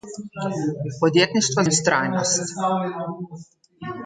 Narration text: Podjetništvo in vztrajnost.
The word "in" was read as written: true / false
true